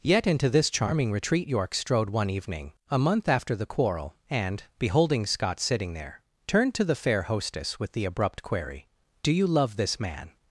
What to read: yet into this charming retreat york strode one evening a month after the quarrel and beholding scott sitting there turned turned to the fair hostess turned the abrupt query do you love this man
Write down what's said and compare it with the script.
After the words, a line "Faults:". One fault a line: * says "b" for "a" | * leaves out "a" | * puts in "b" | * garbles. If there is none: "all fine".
yet into this charming retreat york strode one evening a month after the quarrel and beholding scott sitting there turned to the fair hostess with the abrupt query do you love this man
Faults:
* leaves out "turned"
* says "with" for "turned"